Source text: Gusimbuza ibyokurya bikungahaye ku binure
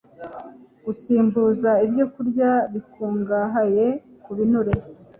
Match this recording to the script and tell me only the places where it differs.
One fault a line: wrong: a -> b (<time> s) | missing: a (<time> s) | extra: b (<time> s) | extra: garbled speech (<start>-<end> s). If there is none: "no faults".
no faults